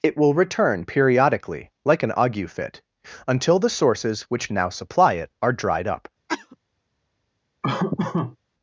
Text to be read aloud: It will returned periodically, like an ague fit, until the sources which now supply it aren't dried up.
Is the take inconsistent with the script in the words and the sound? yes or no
yes